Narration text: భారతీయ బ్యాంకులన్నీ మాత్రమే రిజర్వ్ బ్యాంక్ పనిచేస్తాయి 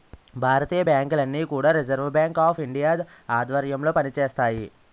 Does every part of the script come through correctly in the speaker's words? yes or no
no